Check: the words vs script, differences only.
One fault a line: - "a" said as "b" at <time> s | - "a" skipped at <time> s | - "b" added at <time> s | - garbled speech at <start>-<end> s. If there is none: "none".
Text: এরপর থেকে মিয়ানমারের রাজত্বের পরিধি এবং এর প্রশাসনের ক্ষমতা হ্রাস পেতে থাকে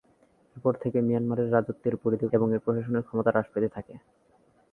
none